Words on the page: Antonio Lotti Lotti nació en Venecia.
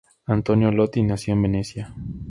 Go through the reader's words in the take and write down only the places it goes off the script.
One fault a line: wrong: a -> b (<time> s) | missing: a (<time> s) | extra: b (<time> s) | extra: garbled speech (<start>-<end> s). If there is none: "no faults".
missing: Lotti (1.0 s)